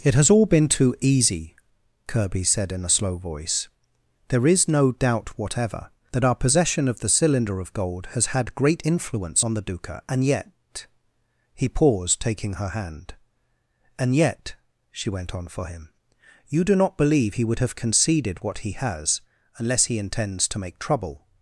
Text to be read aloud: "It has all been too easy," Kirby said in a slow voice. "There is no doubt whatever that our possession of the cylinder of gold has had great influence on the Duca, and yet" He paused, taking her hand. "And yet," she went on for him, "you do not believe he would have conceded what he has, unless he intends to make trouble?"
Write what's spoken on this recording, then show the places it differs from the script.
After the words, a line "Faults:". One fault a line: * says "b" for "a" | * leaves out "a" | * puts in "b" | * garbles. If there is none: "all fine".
"It has all been too easy," Kirby said in a slow voice. "There is no doubt whatever that our possession of the cylinder of gold has had great influence on the Duca, and yet" He paused, taking her hand. "And yet," she went on for him, "you do not believe he would have conceded what he has, unless he intends to make trouble?"
Faults:
all fine